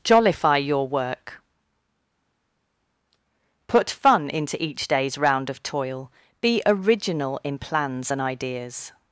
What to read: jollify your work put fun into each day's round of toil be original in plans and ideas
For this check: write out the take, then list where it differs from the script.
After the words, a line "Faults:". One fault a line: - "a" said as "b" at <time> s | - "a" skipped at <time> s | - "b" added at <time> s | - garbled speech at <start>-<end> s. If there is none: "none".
jollify your work put fun into each day's round of toil be original in plans and ideas
Faults:
none